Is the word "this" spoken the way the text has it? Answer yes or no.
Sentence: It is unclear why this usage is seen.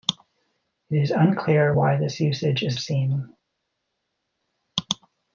yes